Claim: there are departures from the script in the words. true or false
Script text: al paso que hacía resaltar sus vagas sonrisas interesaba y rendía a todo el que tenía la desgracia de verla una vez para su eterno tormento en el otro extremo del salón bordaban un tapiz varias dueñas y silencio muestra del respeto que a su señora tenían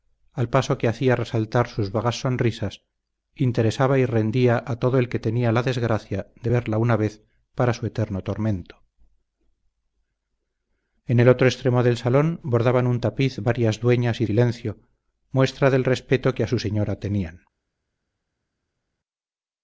false